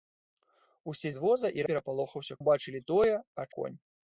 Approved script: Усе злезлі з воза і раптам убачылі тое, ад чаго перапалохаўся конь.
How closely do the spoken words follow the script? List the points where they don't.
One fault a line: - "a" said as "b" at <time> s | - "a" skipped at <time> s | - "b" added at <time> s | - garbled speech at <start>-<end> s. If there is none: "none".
- "злезлі" skipped at 1.1 s
- "раптам" said as "перапалохаўся" at 1.7 s
- "чаго перапалохаўся" skipped at 3.5 s